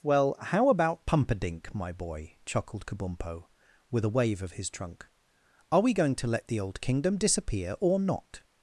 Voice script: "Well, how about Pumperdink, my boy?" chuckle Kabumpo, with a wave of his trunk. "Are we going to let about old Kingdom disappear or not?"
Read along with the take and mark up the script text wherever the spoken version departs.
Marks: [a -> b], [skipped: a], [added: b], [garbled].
"Well, how about Pumperdink, my boy?" [chuckle -> chuckled] Kabumpo, with a wave of his trunk. "Are we going to let [about -> the] old Kingdom disappear or not?"